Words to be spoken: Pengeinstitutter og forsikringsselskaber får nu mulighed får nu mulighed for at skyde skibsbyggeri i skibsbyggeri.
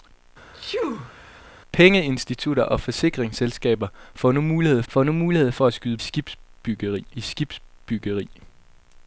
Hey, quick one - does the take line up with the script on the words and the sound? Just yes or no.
no